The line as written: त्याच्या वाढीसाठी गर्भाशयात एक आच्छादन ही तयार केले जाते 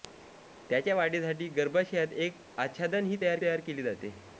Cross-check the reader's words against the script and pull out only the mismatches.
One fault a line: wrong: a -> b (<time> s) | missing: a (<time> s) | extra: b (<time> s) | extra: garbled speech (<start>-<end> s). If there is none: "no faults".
extra: तयार (3.4 s)